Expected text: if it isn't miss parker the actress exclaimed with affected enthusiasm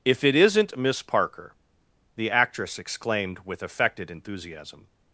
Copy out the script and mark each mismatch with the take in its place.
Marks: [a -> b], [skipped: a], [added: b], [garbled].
if it isn't miss parker the actress exclaimed with affected enthusiasm